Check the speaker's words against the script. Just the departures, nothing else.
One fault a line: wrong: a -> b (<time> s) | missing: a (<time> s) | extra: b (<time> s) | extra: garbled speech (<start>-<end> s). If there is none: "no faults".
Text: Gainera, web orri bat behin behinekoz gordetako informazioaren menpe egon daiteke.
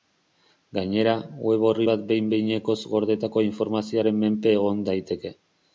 no faults